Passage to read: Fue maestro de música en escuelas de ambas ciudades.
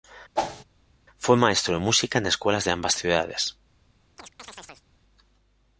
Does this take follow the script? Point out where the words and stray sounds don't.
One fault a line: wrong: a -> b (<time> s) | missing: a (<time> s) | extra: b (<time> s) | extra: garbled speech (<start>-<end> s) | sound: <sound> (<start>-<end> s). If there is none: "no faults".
sound: whoosh (0.4-0.6 s)
sound: chirp (4.2-4.9 s)